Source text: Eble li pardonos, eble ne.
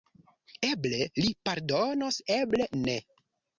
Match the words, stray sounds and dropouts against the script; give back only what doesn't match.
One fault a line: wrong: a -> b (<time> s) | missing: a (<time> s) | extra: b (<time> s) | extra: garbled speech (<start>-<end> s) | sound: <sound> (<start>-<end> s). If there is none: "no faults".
no faults